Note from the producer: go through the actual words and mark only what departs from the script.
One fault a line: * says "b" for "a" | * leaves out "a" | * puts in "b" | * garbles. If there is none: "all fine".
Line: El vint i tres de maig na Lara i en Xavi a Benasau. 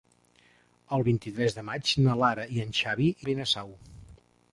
all fine